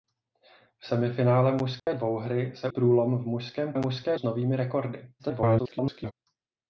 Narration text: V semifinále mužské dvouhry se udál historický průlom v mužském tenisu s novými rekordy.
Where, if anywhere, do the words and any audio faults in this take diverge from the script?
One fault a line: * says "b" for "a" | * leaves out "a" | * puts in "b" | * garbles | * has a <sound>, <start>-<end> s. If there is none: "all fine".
* has a dropout, 1.8-1.9 s
* leaves out "udál historický"
* says "mužské" for "tenisu"
* garbles